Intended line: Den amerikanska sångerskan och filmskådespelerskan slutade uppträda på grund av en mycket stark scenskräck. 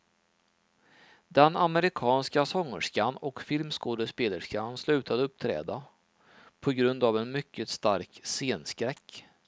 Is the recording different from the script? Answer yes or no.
no